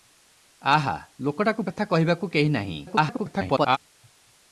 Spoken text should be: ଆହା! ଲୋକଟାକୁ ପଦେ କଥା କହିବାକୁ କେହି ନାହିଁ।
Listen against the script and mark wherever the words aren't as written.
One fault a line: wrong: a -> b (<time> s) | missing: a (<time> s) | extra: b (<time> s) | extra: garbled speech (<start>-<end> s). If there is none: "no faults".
missing: ପଦେ (1.6 s)
extra: garbled speech (2.9-3.8 s)